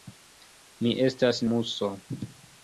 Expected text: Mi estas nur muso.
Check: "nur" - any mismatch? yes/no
yes